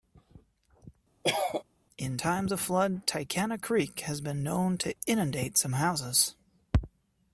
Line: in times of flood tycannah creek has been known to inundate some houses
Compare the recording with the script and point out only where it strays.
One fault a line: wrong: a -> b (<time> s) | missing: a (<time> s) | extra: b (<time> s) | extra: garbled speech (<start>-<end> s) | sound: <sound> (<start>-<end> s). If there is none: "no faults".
sound: cough (1.2-1.6 s)